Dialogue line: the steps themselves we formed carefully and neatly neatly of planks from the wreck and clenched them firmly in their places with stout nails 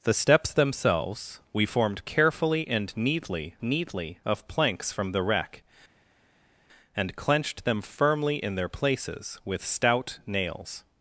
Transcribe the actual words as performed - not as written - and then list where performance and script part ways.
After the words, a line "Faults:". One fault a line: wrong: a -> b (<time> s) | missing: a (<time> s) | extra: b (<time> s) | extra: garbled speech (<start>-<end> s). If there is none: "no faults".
the steps themselves we formed carefully and neatly neatly of planks from the wreck and clenched them firmly in their places with stout nails
Faults:
no faults